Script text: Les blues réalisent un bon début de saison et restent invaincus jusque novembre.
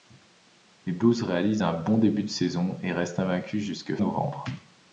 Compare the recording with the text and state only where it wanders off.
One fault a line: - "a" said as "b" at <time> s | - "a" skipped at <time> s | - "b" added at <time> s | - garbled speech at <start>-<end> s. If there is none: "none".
none